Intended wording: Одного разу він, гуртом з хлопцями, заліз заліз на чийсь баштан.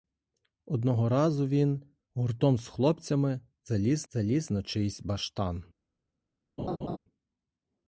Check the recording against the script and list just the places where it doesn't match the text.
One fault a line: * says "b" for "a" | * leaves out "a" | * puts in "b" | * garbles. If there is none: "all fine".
all fine